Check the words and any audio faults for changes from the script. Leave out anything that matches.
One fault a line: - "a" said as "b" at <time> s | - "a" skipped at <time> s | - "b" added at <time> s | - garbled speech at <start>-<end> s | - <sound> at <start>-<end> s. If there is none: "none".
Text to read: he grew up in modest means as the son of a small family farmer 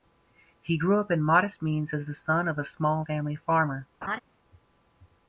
- laugh at 4.0-4.2 s